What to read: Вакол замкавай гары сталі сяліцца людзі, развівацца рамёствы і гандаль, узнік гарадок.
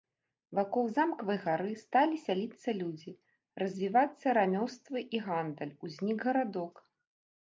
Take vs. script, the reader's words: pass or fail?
pass